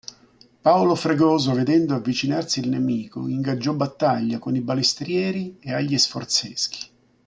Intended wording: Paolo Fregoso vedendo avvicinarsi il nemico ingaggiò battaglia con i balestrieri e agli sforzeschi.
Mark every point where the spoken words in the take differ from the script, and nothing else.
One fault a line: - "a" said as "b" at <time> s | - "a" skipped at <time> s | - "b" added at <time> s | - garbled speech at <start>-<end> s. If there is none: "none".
none